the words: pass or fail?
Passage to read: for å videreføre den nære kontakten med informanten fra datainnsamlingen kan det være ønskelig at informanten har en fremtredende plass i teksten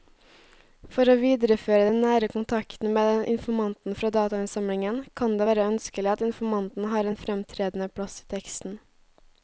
pass